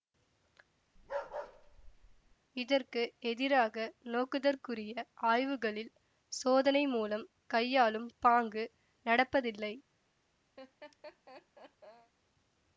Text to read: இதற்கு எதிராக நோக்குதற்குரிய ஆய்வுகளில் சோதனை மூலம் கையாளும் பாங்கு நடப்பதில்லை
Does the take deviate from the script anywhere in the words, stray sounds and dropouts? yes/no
yes